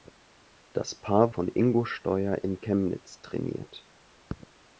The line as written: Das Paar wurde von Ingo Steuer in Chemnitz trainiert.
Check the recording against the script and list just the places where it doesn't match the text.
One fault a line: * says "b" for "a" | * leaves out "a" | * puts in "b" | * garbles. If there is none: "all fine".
* leaves out "wurde"